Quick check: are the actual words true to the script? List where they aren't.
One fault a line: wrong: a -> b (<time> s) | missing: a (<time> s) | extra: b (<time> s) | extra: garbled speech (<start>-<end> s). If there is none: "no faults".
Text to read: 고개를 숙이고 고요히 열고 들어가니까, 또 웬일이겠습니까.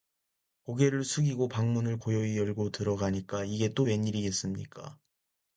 extra: 방문을 (1.5 s)
extra: 이게 (3.4 s)